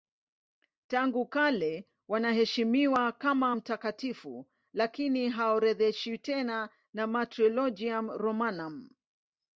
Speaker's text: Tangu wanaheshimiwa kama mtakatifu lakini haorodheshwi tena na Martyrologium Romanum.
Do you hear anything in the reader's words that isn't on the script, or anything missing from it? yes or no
yes